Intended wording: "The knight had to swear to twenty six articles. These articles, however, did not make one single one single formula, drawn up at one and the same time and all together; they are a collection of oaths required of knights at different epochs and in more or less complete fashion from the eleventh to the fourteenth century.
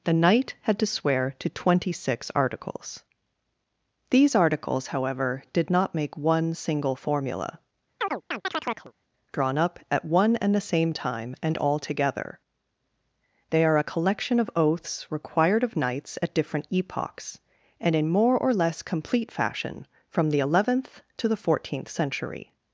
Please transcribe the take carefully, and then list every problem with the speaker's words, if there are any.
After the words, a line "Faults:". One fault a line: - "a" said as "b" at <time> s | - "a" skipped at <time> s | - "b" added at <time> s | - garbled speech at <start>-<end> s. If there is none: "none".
"The knight had to swear to twenty six articles. These articles, however, did not make one single formula, drawn up at one and the same time and all together; they are a collection of oaths required of knights at different epochs and in more or less complete fashion from the eleventh to the fourteenth century.
Faults:
- "one single" skipped at 7.0 s